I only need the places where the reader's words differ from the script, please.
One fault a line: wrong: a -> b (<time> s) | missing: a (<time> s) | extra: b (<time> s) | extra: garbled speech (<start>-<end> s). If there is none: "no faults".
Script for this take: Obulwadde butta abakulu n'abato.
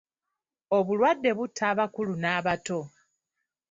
no faults